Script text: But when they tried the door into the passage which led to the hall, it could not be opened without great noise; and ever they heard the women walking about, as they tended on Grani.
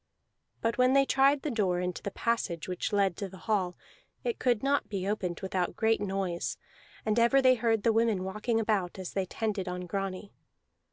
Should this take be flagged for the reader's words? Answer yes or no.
no